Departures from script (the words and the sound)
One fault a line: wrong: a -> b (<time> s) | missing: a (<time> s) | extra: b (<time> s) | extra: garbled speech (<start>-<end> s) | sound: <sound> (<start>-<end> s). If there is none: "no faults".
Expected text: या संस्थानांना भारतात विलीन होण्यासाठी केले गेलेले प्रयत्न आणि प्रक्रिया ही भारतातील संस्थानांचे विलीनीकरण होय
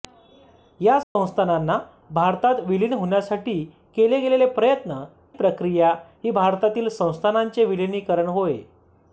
sound: dropout (1.0-1.2 s)
missing: आणि (5.0 s)